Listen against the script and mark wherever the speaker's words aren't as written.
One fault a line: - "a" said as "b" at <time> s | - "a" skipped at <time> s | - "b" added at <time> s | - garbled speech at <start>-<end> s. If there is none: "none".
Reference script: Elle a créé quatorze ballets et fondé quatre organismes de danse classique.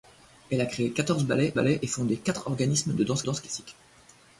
- "ballets" added at 1.5 s
- "danse" added at 3.2 s